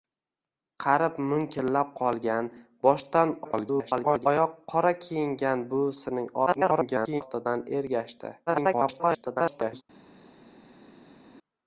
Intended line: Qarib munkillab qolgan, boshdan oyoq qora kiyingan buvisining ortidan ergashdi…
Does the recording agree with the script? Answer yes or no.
no